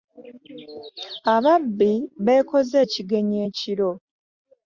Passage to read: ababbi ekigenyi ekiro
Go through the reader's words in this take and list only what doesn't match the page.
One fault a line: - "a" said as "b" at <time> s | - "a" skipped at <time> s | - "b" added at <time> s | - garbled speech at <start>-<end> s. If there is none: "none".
- "beekoze" added at 2.2 s